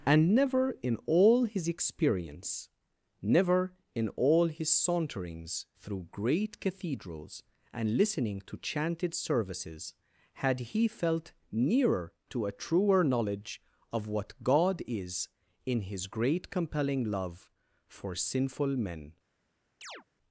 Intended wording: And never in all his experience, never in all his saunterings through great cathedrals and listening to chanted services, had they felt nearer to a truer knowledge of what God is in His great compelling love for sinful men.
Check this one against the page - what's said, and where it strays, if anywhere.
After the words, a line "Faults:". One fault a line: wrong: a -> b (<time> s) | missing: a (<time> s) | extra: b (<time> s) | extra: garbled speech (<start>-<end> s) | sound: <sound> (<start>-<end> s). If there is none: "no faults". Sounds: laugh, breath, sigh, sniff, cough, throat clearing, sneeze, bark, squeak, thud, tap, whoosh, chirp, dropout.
And never in all his experience, never in all his saunterings through great cathedrals and listening to chanted services, had he felt nearer to a truer knowledge of what God is in His great compelling love for sinful men.
Faults:
wrong: they -> he (10.6 s)
sound: chirp (19.8-20.0 s)